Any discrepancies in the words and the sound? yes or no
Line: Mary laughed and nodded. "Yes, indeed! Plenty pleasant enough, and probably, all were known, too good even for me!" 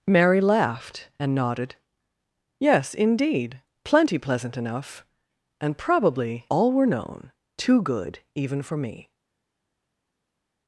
no